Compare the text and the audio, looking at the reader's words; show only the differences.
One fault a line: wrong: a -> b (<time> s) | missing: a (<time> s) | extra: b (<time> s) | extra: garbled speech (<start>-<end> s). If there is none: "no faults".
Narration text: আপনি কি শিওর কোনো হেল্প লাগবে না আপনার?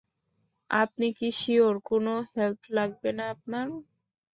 no faults